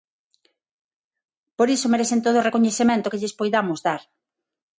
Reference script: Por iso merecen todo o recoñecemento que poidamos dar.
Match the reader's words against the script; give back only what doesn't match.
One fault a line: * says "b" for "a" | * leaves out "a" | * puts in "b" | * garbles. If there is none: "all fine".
* puts in "lles"